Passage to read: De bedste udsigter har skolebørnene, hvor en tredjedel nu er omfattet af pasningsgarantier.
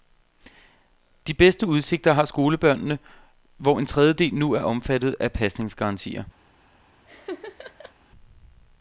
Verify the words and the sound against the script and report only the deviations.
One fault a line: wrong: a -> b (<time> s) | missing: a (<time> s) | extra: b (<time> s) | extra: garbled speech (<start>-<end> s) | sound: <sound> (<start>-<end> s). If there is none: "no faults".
sound: laugh (7.1-7.9 s)